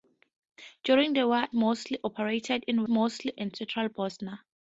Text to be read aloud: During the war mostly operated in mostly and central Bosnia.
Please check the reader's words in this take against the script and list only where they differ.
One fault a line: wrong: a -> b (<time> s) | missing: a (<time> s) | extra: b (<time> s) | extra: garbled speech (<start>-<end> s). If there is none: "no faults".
no faults